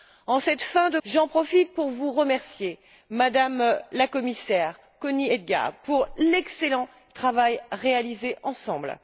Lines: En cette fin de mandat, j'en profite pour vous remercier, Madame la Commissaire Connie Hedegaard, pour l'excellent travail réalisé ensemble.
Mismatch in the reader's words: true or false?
true